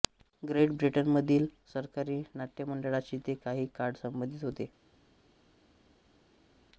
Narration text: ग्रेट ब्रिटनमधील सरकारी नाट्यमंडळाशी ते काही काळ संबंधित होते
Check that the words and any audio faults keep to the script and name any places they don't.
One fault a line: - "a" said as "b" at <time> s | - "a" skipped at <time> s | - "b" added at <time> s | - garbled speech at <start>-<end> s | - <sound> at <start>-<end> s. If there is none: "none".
none